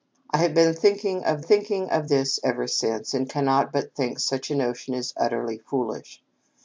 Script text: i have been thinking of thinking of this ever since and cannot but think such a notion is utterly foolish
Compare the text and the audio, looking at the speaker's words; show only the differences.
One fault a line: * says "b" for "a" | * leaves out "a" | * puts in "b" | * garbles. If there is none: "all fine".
all fine